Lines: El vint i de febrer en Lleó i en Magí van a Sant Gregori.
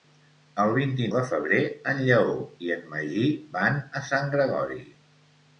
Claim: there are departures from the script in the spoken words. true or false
false